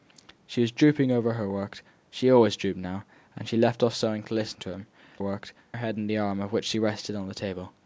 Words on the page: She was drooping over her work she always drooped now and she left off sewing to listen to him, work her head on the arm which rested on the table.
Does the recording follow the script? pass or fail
pass